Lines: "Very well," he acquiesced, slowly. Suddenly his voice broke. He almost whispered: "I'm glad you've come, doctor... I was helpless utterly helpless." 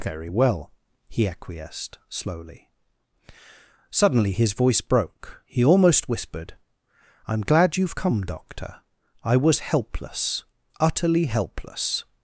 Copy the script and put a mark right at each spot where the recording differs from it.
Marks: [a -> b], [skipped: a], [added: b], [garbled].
"Very well," he acquiesced, slowly. Suddenly his voice broke. He almost whispered: "I'm glad you've come, doctor... I was helpless utterly helpless."